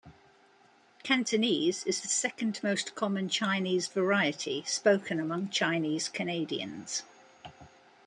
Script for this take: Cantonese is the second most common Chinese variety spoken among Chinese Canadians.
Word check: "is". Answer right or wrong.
right